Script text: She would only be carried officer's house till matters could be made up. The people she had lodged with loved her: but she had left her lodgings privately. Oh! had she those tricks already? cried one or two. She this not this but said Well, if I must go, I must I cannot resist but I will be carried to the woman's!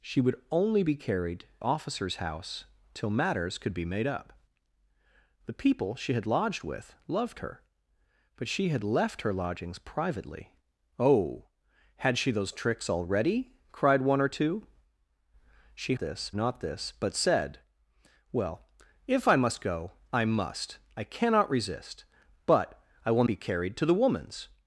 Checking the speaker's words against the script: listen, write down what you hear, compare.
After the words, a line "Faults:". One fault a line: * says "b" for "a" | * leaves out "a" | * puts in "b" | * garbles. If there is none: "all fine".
She would only be carried officer's house till matters could be made up. The people she had lodged with loved her: but she had left her lodgings privately. Oh! had she those tricks already? cried one or two. She this not this but said Well, if I must go, I must I cannot resist but I will be carried to the woman's!
Faults:
all fine